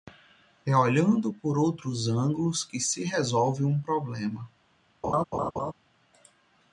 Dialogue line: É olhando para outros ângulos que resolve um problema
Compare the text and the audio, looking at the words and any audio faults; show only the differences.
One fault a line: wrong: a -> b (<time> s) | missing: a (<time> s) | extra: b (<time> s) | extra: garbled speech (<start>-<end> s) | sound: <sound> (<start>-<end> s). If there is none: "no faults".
wrong: para -> por (1.3 s)
extra: se (2.8 s)
sound: laugh (5.0-5.7 s)